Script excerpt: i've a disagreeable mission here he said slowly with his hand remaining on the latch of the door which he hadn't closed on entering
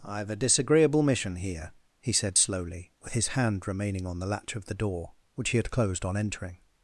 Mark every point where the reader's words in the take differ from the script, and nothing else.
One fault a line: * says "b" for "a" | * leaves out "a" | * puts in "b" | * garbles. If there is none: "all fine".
* says "had" for "hadn't"